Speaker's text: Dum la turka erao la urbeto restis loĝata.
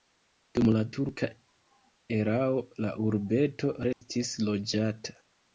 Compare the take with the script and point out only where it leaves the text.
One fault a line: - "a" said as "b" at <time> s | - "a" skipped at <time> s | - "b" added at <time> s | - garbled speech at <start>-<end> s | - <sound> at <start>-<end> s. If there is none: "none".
- dropout at 3.9-4.0 s